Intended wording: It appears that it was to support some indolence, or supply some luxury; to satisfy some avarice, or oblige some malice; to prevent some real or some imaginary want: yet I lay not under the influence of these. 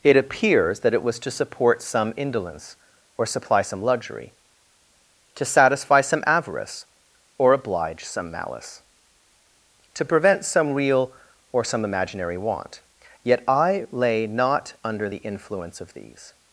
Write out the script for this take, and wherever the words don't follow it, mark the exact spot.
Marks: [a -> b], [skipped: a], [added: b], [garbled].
It appears that it was to support some indolence, or supply some luxury; to satisfy some avarice, or oblige some malice; to prevent some real or some imaginary want: yet I lay not under the influence of these.